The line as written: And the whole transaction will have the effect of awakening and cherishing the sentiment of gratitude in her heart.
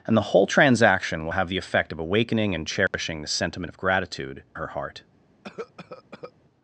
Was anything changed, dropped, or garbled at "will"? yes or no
no